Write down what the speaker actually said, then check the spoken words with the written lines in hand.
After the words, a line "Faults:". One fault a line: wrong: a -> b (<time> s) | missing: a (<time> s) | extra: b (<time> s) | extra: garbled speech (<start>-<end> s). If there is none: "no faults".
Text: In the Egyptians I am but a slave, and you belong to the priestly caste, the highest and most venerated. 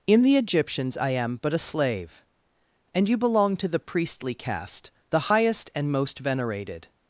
In the Egyptians I am but a slave, and you belong to the priestly caste, the highest and most venerated.
Faults:
no faults